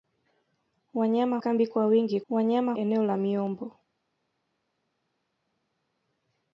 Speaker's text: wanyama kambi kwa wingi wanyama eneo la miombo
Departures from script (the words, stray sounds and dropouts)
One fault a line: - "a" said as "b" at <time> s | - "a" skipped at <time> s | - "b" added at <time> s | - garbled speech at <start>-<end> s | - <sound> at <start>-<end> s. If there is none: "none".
none